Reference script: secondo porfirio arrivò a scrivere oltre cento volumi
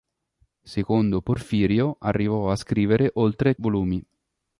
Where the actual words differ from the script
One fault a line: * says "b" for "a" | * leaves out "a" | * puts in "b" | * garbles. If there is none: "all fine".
* leaves out "cento"